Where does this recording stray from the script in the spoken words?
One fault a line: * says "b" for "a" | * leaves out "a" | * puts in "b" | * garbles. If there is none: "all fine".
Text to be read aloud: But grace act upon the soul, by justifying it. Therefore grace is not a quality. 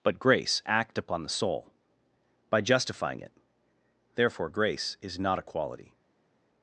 all fine